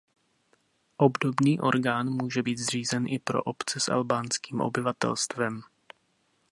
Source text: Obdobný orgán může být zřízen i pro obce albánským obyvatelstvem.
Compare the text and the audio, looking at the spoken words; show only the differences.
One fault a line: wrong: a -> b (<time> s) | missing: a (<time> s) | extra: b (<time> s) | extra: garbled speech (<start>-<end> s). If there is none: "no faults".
extra: s (3.8 s)